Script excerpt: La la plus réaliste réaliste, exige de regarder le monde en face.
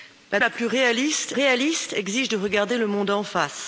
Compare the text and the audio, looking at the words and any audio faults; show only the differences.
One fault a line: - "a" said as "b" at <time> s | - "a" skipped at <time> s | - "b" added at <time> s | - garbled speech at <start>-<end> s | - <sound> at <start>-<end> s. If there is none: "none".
none